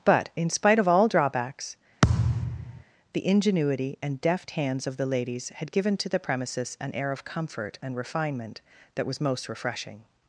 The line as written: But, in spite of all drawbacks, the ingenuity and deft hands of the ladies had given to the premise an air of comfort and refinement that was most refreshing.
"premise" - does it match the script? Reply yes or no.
no